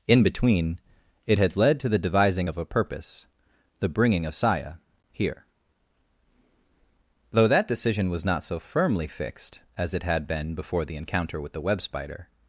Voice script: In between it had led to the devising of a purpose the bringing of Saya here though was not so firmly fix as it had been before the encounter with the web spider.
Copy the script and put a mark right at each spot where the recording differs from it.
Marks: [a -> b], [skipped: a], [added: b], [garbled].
In between it had led to the devising of a purpose the bringing of Saya here though [added: that decision] was not so firmly [fix -> fixed] as it had been before the encounter with the web spider.